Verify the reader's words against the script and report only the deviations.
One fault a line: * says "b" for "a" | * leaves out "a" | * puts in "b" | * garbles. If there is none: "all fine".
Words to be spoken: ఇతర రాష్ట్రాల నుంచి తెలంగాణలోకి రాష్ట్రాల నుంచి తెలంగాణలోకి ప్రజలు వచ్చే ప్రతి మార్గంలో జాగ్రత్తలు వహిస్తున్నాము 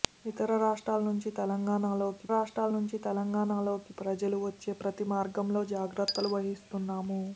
all fine